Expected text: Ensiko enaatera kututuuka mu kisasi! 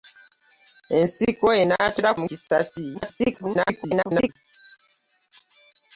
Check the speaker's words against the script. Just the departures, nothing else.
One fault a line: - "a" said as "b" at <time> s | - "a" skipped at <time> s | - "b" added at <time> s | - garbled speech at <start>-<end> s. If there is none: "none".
- "kututuuka" skipped at 2.1 s
- garbled speech at 2.9-4.3 s